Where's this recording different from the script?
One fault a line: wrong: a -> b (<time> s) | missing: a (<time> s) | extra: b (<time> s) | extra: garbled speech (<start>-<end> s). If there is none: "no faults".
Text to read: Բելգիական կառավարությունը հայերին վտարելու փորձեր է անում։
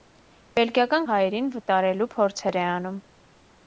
missing: կառավարությունը (1.0 s)